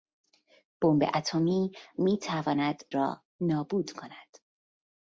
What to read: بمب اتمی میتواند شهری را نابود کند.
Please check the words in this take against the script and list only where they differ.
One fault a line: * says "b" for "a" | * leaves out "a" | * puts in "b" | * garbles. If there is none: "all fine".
* leaves out "شهری"